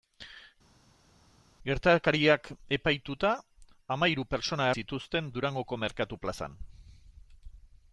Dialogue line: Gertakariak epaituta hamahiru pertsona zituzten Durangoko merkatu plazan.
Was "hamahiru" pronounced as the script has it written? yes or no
yes